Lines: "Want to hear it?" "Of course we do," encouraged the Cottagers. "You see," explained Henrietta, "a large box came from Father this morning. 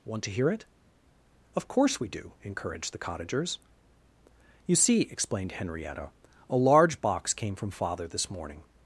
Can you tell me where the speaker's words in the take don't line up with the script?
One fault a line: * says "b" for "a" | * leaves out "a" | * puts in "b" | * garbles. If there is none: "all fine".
all fine